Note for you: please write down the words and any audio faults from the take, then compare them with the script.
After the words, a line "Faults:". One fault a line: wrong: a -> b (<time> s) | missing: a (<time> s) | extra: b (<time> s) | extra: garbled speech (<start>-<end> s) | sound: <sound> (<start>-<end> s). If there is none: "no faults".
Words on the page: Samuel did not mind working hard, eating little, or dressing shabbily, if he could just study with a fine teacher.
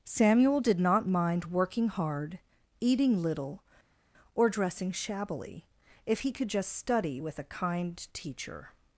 Samuel did not mind working hard, eating little, or dressing shabbily, if he could just study with a kind teacher.
Faults:
wrong: fine -> kind (7.5 s)